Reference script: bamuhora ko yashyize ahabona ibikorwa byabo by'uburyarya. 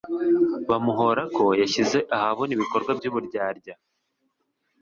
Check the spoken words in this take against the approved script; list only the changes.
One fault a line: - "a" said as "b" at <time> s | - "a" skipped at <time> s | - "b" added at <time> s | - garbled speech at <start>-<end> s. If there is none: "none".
- "byabo" skipped at 2.9 s